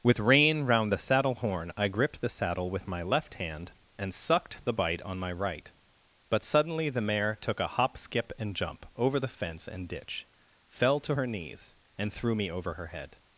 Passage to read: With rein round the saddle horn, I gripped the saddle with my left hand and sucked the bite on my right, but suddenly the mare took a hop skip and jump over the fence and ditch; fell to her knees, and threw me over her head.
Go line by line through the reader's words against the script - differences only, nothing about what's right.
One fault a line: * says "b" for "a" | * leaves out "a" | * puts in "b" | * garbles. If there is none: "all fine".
all fine